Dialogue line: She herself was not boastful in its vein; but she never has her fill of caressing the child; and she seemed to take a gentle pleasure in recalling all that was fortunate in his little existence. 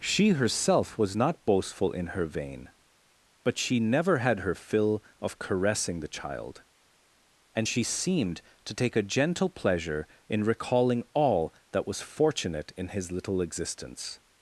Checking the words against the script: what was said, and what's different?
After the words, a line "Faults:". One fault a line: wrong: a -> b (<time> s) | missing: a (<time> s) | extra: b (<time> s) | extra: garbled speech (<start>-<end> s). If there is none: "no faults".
She herself was not boastful in her vein; but she never had her fill of caressing the child; and she seemed to take a gentle pleasure in recalling all that was fortunate in his little existence.
Faults:
wrong: its -> her (2.1 s)
wrong: has -> had (4.2 s)